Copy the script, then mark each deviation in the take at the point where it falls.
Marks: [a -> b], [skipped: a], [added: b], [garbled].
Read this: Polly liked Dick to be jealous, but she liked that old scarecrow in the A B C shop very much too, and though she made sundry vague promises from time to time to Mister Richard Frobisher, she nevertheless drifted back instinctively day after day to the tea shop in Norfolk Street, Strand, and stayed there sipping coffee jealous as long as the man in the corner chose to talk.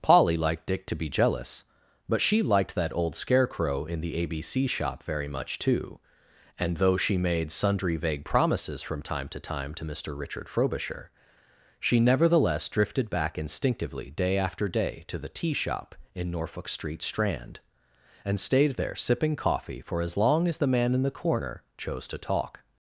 Polly liked Dick to be jealous, but she liked that old scarecrow in the A B C shop very much too, and though she made sundry vague promises from time to time to Mister Richard Frobisher, she nevertheless drifted back instinctively day after day to the tea shop in Norfolk Street, Strand, and stayed there sipping coffee [jealous -> for] as long as the man in the corner chose to talk.